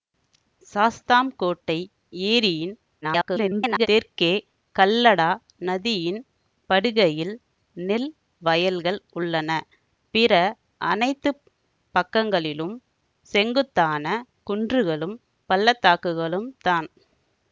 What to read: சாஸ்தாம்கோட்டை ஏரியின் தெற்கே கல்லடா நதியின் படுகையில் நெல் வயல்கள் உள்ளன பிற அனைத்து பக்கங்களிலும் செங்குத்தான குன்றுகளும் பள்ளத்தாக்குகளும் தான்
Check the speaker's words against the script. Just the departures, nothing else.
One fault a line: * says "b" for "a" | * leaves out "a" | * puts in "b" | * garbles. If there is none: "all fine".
* garbles